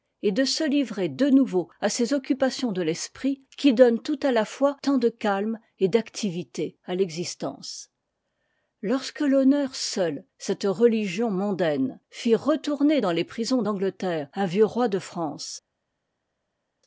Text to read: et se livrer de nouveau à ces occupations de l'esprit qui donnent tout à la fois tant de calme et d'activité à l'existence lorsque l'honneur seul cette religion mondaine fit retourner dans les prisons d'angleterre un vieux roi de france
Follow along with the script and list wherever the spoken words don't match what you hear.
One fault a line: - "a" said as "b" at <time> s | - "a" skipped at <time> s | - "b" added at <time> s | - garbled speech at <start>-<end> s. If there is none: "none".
- "de" added at 0.3 s